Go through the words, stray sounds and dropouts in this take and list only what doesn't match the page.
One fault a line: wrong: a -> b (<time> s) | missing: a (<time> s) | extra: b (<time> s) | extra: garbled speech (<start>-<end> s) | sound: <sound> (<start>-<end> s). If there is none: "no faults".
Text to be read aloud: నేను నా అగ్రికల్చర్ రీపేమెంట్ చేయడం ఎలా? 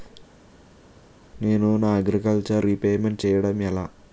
no faults